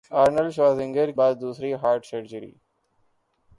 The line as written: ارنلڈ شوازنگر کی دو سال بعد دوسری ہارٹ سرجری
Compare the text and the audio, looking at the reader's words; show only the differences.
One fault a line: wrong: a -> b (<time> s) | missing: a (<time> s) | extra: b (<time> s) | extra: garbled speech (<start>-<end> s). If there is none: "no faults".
missing: کی دو سال (1.1 s)